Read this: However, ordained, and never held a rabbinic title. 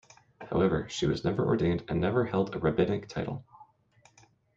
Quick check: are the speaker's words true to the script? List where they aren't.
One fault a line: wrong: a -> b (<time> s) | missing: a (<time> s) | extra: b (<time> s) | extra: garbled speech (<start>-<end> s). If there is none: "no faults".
extra: she was never (0.9 s)